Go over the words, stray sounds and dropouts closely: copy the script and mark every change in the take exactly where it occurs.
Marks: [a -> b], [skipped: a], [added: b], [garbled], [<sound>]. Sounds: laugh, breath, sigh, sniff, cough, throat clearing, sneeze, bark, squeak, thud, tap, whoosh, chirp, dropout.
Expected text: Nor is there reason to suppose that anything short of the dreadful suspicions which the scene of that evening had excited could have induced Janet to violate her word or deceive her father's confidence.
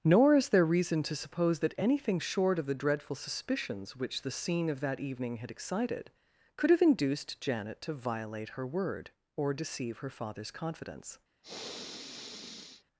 Nor is there reason to suppose that anything short of the dreadful suspicions which the scene of that evening had excited could have induced Janet to violate her word or deceive her father's confidence. [sniff]